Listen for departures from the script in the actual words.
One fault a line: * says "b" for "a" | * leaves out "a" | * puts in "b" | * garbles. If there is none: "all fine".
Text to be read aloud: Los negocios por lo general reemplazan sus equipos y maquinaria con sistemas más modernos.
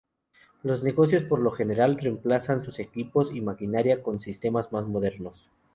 all fine